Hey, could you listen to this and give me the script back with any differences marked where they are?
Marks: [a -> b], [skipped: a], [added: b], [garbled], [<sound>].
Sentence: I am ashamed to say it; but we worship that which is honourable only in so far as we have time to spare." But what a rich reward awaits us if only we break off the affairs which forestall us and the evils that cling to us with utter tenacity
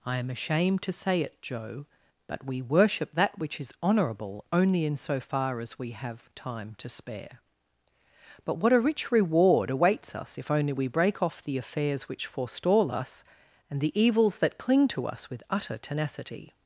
I am ashamed to say it; [added: joe] but we worship that which is honourable only in so far as we have time to spare." But what a rich reward awaits us if only we break off the affairs which forestall us and the evils that cling to us with utter tenacity